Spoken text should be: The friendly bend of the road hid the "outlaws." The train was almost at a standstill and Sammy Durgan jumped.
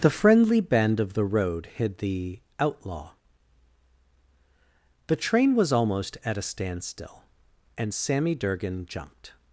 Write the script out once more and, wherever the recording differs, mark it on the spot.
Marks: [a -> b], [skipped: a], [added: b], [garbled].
The friendly bend of the road hid the ["outlaws." -> outlaw] The train was almost at a standstill and Sammy Durgan jumped.